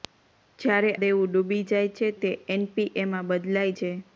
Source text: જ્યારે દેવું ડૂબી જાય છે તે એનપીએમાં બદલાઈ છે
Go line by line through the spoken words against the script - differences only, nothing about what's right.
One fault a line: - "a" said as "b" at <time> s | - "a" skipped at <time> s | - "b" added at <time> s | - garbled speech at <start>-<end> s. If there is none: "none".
none